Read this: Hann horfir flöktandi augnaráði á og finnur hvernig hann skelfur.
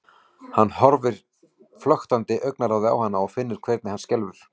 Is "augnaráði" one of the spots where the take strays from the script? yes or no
no